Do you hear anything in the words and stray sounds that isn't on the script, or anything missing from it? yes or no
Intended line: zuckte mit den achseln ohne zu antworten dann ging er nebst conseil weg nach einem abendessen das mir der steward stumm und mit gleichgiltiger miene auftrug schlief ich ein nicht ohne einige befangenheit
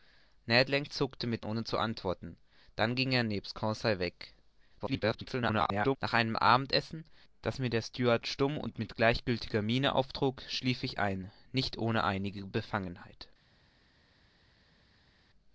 yes